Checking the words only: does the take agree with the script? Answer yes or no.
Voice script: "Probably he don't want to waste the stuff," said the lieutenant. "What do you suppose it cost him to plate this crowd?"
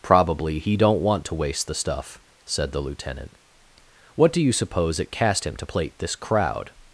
no